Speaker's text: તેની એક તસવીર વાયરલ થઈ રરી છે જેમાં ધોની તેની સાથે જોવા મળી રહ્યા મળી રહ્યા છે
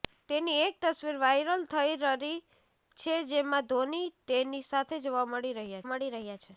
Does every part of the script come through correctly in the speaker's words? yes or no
yes